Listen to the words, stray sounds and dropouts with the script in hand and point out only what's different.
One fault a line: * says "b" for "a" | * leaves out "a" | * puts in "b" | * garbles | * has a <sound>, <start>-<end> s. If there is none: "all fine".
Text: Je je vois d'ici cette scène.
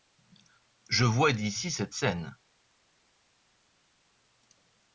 * leaves out "je"